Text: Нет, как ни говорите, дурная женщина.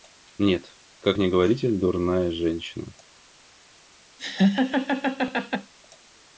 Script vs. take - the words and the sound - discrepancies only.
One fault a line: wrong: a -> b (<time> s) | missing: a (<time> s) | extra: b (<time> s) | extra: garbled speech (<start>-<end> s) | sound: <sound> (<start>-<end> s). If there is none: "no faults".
sound: laugh (4.2-5.7 s)